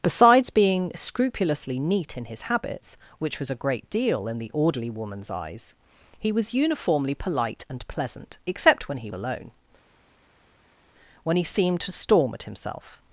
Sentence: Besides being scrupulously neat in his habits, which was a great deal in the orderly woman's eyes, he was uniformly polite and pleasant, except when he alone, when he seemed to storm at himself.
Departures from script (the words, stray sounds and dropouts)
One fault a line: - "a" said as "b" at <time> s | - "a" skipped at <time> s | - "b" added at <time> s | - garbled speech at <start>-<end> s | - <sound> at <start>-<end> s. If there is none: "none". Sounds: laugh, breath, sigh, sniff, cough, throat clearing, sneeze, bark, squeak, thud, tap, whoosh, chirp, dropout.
none